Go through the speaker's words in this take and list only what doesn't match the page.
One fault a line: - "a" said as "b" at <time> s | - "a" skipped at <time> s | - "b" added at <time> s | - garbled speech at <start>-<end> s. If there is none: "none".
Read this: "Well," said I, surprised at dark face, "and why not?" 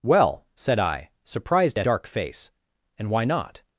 none